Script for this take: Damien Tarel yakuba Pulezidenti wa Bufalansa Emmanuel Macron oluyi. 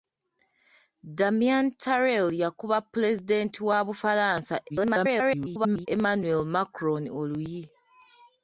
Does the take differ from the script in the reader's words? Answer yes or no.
yes